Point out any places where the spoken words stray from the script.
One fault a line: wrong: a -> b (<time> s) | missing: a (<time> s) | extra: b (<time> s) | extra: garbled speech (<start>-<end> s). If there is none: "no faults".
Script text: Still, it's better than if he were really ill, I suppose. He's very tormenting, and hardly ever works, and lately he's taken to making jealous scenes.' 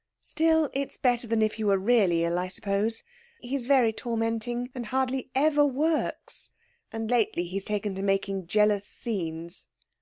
no faults